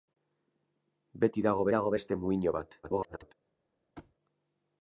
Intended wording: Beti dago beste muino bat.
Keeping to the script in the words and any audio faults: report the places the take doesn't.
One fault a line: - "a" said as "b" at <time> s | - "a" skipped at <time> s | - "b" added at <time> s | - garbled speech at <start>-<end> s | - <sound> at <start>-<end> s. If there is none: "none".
- "dago" added at 1.8 s
- garbled speech at 2.8-3.3 s
- thud at 4.0-4.1 s